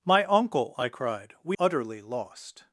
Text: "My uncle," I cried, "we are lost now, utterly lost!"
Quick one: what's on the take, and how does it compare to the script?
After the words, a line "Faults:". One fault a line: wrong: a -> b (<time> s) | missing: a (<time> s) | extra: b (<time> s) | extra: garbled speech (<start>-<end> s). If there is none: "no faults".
"My uncle," I cried, "we utterly lost!"
Faults:
missing: are lost now (1.6 s)